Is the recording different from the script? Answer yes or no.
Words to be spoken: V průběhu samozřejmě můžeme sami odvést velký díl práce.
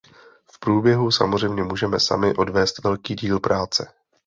no